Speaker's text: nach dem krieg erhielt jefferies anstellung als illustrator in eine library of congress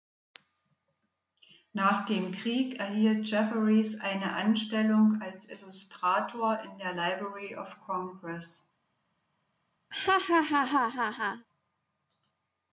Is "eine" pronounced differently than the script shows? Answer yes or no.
yes